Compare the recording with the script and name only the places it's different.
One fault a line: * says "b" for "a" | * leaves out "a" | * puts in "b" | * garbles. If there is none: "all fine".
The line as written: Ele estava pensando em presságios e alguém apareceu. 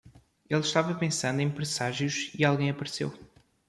all fine